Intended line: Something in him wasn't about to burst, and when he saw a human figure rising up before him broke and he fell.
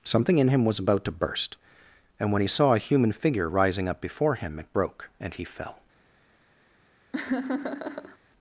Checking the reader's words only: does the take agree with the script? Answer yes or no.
no